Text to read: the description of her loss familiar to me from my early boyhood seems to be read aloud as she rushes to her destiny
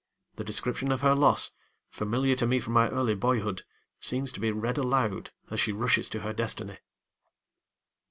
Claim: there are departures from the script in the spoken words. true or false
false